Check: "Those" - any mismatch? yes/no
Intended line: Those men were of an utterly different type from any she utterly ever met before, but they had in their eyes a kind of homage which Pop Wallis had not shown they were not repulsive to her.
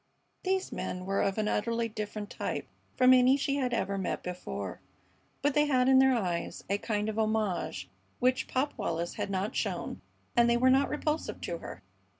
yes